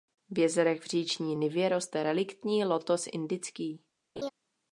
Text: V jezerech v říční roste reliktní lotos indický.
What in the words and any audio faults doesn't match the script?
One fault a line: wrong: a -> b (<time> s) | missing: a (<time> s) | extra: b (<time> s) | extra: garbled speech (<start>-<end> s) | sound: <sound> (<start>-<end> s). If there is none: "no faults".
extra: nivě (1.3 s)
sound: laugh (4.2-4.3 s)